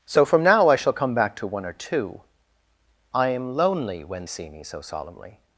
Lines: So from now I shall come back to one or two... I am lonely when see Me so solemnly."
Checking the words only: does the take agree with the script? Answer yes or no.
yes